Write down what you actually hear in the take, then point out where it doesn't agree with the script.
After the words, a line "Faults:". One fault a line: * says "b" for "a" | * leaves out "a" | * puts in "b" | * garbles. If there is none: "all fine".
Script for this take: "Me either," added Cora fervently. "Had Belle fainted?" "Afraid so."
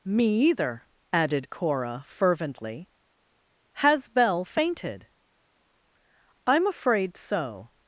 "Me either," added Cora fervently. "Has Belle fainted?" "I'm afraid so."
Faults:
* says "Has" for "Had"
* puts in "I'm"